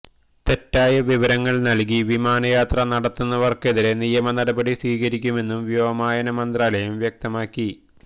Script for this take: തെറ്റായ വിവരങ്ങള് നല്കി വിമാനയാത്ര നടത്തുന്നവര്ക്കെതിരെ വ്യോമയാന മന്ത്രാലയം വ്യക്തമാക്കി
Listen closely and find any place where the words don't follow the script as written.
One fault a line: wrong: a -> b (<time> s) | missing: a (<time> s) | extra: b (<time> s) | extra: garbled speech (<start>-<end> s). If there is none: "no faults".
extra: നിയമ നടപടി സ്വീകരിക്കുമെന്നും (4.0 s)